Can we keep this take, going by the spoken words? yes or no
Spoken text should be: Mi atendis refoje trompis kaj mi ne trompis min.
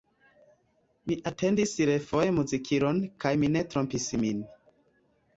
no